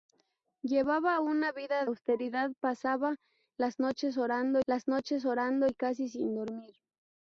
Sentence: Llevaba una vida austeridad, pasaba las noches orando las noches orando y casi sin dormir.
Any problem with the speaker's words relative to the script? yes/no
no